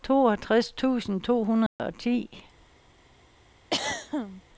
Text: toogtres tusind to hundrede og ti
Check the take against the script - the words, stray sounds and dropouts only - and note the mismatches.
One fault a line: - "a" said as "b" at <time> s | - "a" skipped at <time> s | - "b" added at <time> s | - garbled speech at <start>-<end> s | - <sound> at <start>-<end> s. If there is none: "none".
- dropout at 1.7-1.8 s
- throat clearing at 3.7-4.4 s